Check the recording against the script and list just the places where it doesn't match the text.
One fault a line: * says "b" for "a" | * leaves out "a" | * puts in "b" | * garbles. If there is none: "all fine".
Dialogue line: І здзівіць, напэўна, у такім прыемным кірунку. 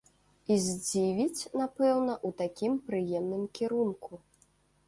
all fine